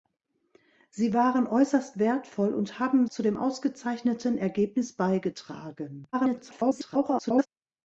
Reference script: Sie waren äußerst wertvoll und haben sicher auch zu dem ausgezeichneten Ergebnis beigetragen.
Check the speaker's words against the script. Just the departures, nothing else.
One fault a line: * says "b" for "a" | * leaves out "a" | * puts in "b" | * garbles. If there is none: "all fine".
* leaves out "sicher auch"
* garbles